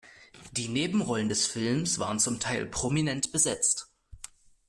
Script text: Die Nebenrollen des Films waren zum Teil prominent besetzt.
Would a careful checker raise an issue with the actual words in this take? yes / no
no